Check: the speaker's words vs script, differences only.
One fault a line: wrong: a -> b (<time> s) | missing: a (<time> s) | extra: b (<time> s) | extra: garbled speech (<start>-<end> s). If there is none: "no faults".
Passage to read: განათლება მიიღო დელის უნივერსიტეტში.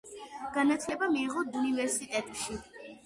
missing: დელის (1.5 s)